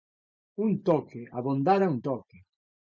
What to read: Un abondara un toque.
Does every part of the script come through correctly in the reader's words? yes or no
no